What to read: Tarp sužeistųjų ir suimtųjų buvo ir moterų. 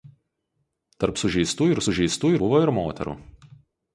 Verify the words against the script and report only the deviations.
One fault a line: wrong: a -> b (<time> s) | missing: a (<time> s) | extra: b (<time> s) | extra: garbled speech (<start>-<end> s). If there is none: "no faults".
wrong: suimtųjų -> sužeistųjų (1.8 s)